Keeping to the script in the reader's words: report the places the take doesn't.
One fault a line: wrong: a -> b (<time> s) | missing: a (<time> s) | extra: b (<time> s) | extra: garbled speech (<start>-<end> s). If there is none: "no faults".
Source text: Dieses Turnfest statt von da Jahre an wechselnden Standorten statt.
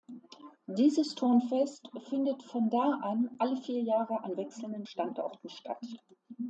wrong: statt -> findet (2.1 s)
extra: an alle vier (3.0 s)